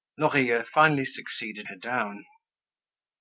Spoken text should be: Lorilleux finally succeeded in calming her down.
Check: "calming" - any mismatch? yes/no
yes